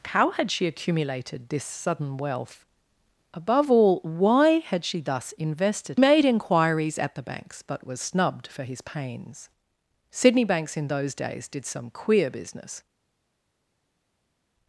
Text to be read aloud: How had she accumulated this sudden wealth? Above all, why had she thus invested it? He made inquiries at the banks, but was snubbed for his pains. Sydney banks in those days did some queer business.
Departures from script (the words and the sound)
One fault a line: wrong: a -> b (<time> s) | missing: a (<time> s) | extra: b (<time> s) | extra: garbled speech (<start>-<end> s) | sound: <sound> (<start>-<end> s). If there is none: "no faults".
missing: it He (6.0 s)